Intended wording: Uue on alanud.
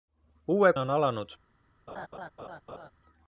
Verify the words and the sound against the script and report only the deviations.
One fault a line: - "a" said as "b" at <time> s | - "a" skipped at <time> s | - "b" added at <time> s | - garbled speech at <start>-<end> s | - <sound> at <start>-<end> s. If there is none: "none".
- laugh at 1.9-2.9 s